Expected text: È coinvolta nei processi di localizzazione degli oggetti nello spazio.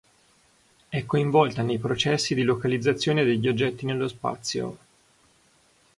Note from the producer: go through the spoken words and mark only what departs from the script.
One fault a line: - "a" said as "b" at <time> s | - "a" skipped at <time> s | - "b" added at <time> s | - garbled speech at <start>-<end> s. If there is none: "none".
none